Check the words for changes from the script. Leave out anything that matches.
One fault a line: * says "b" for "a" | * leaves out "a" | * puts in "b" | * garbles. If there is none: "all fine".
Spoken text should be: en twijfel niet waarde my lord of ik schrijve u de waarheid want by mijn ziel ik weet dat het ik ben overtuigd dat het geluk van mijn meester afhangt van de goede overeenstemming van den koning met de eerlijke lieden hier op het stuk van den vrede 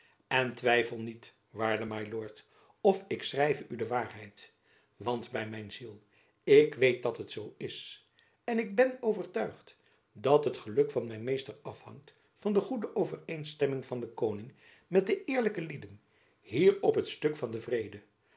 * puts in "zoo is en"